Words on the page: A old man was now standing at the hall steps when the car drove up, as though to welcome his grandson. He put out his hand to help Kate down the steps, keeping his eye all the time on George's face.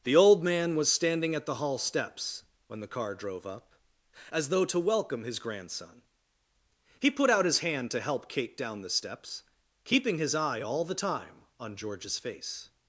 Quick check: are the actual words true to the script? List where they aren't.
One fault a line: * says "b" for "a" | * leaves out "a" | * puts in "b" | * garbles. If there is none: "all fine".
* says "The" for "A"
* leaves out "now"